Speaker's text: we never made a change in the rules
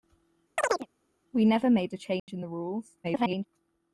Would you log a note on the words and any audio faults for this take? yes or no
yes